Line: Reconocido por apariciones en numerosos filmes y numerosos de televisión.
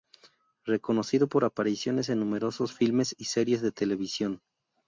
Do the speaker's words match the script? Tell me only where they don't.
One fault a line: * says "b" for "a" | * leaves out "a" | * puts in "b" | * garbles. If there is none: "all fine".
* says "series" for "numerosos"